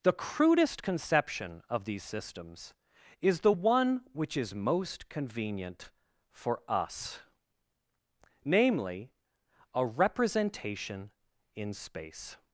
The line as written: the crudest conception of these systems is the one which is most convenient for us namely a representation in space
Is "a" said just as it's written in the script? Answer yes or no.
yes